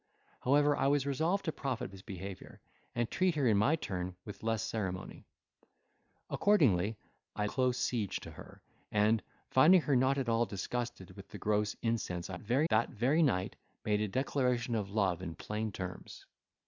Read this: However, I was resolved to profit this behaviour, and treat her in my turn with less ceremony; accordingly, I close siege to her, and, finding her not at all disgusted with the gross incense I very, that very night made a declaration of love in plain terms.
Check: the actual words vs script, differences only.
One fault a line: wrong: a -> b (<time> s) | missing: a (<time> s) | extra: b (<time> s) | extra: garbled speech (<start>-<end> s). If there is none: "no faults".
no faults